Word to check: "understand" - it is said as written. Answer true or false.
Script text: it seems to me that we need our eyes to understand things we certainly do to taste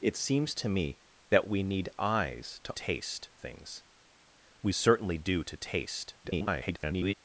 false